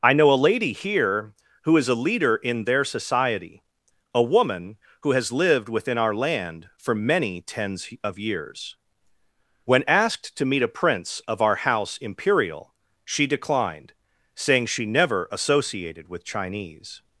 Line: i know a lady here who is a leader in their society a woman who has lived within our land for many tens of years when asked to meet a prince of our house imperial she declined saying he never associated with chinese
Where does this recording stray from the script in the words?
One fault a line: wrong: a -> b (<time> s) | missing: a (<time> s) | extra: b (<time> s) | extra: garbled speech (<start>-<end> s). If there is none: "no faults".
wrong: he -> she (14.7 s)